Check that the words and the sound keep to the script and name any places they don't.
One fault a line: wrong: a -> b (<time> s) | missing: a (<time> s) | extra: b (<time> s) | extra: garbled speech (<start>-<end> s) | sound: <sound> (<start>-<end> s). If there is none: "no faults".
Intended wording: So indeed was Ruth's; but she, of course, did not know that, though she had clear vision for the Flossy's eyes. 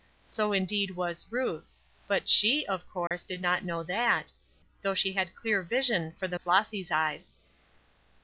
sound: dropout (3.1-3.1 s)